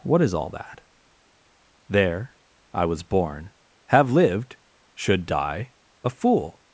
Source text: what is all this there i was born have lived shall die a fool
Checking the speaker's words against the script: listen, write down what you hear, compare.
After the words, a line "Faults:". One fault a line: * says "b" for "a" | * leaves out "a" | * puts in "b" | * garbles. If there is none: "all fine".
what is all that there i was born have lived should die a fool
Faults:
* says "that" for "this"
* says "should" for "shall"